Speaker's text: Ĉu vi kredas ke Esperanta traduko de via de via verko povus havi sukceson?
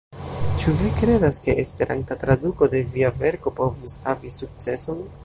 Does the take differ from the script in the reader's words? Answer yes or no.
yes